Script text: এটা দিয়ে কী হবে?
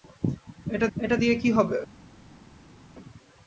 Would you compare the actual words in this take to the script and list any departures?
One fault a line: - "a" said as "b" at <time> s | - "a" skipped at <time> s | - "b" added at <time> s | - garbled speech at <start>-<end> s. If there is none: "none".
- "এটা" added at 1.0 s